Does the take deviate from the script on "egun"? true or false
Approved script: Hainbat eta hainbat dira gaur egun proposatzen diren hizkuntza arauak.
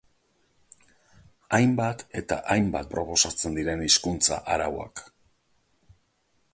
true